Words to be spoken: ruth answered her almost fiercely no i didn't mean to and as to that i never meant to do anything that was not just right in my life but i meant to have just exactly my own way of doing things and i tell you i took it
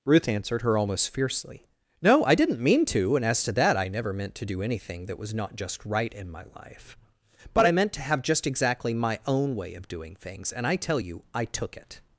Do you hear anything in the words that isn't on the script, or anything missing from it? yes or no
no